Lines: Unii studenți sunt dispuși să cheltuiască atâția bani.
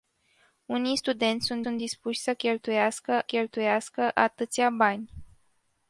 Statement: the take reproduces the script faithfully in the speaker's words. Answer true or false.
false